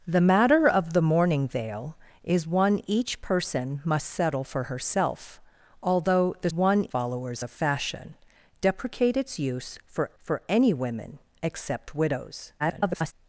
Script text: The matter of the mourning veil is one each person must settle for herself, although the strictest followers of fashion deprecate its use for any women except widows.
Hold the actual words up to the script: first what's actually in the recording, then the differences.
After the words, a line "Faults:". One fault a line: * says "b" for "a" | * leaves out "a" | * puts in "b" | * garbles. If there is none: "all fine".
The matter of the mourning veil is one each person must settle for herself, although the one followers of fashion deprecate its use for for any women except widows. [garbled]
Faults:
* says "one" for "strictest"
* puts in "for"
* garbles